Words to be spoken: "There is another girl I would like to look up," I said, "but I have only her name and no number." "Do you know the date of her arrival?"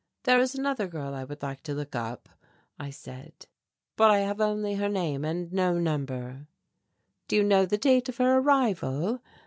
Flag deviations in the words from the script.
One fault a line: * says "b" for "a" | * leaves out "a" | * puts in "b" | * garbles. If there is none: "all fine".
all fine